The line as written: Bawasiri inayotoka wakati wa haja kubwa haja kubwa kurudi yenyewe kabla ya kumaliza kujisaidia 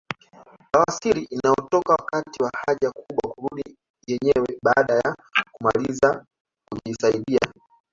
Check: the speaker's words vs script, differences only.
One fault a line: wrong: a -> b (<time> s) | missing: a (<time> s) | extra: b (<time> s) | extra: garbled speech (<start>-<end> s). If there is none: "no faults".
missing: haja kubwa (3.3 s)
wrong: kabla -> baada (4.6 s)